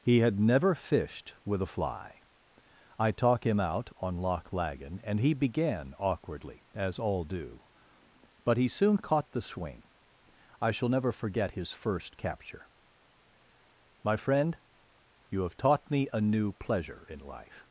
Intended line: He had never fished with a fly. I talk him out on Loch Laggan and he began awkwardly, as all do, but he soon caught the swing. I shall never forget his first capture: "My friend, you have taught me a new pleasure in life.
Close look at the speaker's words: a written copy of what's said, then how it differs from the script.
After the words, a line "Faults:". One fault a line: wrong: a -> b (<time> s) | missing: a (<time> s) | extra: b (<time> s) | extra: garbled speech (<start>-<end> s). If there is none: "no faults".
He had never fished with a fly. I talk him out on Loch Laggan and he began awkwardly, as all do, but he soon caught the swing. I shall never forget his first capture: "My friend, you have taught me a new pleasure in life.
Faults:
no faults